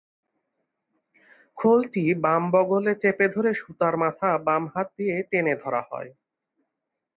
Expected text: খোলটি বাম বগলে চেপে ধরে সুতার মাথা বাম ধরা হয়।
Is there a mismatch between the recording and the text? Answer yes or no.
yes